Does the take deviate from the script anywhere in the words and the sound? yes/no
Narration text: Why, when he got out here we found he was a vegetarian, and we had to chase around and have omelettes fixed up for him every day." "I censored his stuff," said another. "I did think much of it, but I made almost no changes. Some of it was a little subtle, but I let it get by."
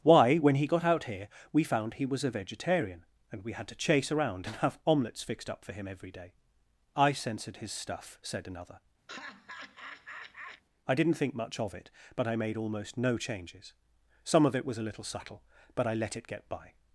yes